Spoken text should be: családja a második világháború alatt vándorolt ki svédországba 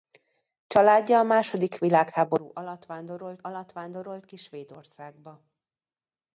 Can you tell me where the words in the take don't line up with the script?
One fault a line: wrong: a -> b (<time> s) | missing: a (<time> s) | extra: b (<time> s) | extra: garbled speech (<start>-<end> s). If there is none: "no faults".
extra: alatt vándorolt (3.4 s)